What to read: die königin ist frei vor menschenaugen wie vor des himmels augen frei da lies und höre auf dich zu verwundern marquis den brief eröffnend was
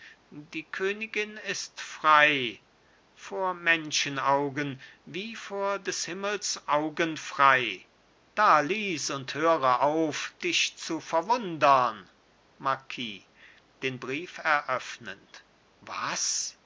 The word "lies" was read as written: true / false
true